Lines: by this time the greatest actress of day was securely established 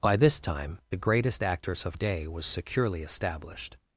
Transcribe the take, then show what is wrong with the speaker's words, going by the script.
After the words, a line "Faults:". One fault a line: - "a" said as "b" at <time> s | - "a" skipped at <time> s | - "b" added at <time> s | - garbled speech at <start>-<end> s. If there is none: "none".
by this time the greatest actress of day was securely established
Faults:
none